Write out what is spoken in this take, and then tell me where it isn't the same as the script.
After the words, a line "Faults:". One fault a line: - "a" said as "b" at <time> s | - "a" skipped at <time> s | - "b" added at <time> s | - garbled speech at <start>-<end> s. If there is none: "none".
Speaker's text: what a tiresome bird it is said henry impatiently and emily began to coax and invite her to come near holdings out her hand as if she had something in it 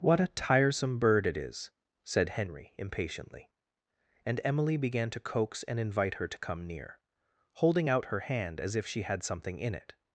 what a tiresome bird it is said henry impatiently and emily began to coax and invite her to come near holding out her hand as if she had something in it
Faults:
- "holdings" said as "holding" at 7.5 s